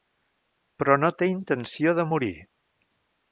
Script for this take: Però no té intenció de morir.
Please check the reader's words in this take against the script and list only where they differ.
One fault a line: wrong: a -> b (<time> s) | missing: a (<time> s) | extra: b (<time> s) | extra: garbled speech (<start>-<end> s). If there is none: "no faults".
no faults